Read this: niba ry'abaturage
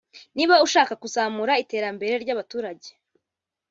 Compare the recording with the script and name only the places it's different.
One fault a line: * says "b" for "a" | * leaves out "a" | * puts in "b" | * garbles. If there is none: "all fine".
* puts in "ushaka kuzamura iterambere"